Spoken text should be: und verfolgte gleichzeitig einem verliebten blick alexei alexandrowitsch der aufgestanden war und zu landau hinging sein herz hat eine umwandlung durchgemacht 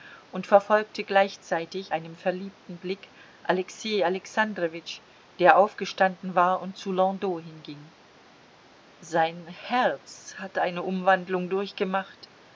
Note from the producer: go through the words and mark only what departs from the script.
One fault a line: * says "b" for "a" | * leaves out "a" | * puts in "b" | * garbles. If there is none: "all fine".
all fine